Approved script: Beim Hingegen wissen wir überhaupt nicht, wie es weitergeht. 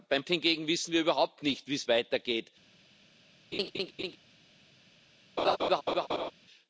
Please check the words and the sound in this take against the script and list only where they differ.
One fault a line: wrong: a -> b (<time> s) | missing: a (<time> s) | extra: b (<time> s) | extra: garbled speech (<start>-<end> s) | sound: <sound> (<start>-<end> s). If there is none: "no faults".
sound: laugh (3.5-4.2 s)
sound: laugh (5.4-6.3 s)